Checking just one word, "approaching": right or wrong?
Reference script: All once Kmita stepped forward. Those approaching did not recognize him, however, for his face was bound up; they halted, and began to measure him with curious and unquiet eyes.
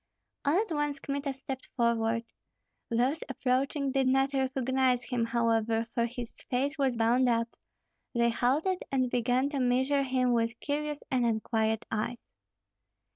right